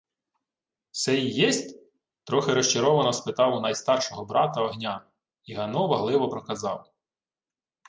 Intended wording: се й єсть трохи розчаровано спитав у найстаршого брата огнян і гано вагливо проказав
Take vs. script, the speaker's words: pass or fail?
pass